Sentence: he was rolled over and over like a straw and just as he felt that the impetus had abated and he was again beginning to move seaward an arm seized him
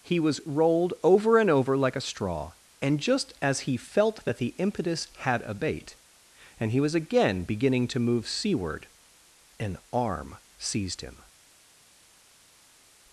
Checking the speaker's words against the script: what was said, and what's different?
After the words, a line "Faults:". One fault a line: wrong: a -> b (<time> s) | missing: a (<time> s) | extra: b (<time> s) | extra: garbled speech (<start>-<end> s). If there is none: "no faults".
he was rolled over and over like a straw and just as he felt that the impetus had abate and he was again beginning to move seaward an arm seized him
Faults:
wrong: abated -> abate (5.4 s)